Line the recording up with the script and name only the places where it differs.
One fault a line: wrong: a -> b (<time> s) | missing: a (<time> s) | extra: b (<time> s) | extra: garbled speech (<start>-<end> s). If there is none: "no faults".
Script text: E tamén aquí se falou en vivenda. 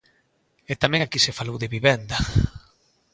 wrong: en -> de (1.6 s)